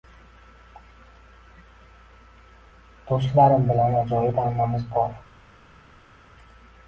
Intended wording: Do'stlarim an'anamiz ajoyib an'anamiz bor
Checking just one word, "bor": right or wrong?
right